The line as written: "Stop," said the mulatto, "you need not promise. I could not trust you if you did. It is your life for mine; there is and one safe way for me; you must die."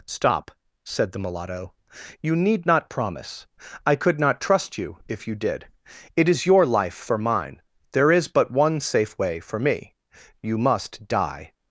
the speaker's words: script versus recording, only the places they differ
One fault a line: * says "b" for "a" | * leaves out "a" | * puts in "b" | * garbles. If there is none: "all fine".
* says "but" for "and"